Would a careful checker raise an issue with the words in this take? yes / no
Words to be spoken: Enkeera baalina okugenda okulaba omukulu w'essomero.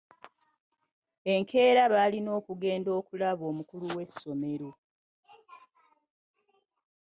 no